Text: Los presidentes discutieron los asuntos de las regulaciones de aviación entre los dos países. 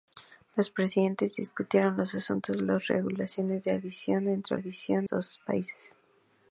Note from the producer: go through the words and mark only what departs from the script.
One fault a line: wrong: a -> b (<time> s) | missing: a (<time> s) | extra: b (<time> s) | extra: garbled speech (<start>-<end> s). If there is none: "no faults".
wrong: los -> aviación (4.5 s)